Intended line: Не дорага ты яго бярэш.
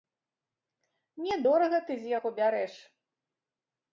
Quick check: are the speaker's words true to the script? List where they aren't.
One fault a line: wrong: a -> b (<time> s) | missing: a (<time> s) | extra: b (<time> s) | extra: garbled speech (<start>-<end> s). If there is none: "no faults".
extra: з (2.0 s)